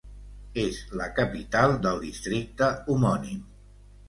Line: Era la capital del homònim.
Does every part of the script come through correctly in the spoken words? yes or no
no